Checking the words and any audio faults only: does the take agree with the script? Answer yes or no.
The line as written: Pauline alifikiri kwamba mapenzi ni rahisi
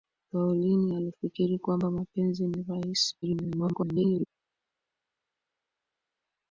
no